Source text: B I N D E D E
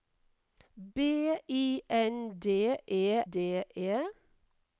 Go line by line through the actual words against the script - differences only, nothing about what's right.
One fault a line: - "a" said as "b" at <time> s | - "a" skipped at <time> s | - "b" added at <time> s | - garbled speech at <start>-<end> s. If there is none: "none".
none